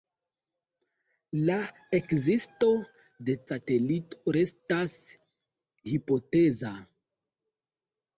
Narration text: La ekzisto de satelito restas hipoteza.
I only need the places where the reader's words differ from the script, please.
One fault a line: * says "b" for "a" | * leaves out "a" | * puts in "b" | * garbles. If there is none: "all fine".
all fine